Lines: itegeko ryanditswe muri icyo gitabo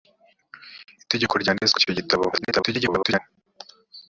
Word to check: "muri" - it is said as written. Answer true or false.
false